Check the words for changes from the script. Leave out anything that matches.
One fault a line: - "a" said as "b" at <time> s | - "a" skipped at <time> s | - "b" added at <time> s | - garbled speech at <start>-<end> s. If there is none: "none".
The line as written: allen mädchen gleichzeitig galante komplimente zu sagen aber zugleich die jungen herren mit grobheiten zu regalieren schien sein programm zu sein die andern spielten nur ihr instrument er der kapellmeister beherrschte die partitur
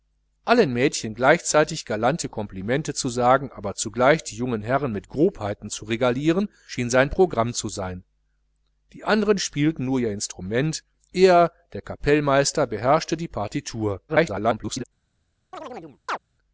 - garbled speech at 14.1-14.8 s